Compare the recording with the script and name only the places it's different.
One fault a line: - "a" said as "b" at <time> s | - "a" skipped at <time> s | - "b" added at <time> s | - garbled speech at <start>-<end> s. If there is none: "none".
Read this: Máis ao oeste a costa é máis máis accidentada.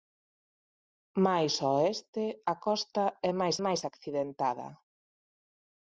none